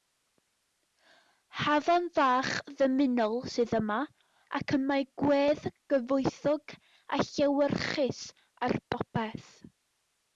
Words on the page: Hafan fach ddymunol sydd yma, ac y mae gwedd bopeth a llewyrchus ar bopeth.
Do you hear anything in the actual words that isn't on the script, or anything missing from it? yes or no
yes